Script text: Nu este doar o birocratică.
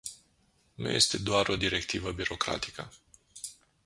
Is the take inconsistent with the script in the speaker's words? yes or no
yes